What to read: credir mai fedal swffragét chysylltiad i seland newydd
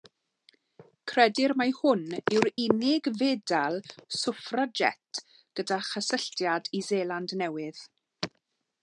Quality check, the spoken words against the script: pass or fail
fail